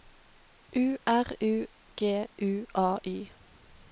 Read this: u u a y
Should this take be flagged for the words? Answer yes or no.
yes